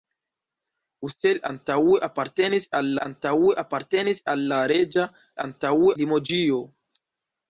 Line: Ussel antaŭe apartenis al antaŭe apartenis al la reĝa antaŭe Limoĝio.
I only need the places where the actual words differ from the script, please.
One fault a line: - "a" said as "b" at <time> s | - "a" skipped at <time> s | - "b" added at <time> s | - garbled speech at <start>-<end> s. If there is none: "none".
none